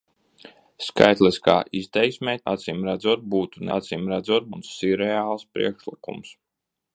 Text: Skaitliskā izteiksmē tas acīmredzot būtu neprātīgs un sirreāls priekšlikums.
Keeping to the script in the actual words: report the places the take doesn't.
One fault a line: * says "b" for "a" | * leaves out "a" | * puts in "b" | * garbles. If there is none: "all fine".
* leaves out "tas"
* says "acīmredzot" for "neprātīgs"